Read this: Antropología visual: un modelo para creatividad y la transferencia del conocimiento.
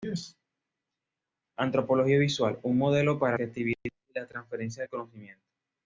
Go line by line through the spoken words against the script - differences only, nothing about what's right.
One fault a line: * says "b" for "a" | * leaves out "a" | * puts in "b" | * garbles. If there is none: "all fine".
all fine